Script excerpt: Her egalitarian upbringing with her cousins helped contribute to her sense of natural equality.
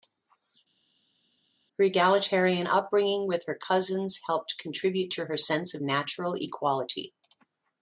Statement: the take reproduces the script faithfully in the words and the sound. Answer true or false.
true